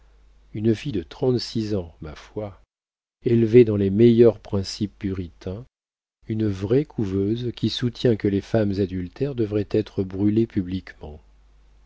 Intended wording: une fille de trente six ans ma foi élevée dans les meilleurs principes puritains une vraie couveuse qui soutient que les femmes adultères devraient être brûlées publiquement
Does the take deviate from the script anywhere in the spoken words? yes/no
no